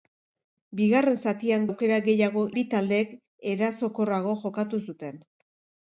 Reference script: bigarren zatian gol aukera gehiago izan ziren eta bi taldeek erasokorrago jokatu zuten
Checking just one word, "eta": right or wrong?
wrong